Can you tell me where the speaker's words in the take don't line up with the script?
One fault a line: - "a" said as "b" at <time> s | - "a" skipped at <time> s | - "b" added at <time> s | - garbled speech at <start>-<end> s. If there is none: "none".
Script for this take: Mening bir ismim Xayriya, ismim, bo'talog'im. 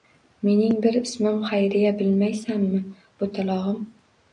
- "ismim" said as "bilmaysanmi" at 2.0 s